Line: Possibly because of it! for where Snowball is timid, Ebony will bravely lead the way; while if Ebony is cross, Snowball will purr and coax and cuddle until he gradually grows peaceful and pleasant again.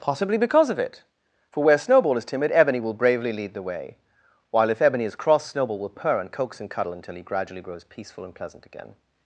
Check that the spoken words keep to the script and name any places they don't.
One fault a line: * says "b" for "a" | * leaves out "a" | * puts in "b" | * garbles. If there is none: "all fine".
all fine